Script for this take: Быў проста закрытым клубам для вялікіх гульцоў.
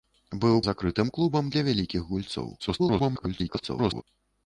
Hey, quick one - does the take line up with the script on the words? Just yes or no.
no